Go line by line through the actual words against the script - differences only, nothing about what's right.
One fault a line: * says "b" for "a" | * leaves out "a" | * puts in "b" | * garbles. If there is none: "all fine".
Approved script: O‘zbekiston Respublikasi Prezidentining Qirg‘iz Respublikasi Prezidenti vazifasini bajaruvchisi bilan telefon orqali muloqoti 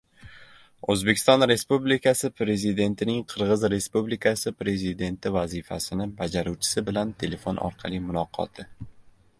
all fine